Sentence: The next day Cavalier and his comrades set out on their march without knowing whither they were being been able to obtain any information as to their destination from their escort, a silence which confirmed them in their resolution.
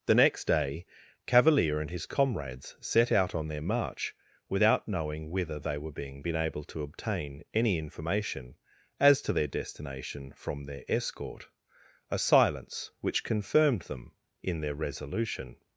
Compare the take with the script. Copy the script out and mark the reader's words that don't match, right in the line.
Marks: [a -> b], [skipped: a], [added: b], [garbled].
The next day Cavalier and his comrades set out on their march without knowing whither they were being been able to obtain any information as to their destination from their escort, a silence which confirmed them in their resolution.